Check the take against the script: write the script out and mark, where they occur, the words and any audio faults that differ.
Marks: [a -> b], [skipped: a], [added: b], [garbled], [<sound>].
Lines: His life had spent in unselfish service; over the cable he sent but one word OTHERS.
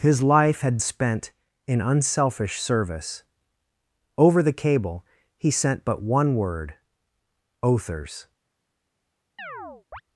His life had spent in unselfish service; over the cable he sent but one word OTHERS. [chirp]